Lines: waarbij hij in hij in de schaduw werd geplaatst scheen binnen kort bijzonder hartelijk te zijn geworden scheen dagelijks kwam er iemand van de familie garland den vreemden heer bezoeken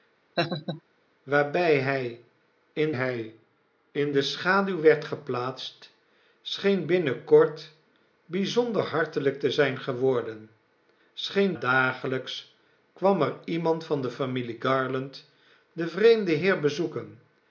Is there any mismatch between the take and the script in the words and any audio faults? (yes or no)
yes